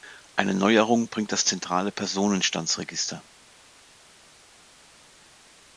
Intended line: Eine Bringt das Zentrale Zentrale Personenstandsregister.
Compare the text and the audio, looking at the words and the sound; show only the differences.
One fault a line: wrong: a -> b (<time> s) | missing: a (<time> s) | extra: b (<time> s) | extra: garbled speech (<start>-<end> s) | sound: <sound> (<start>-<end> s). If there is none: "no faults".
extra: Neuerung (0.6 s)
missing: Zentrale (1.9 s)